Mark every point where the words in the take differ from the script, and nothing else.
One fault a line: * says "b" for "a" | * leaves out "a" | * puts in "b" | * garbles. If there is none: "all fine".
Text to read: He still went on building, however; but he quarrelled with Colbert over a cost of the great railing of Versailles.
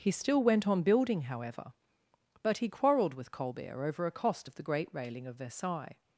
all fine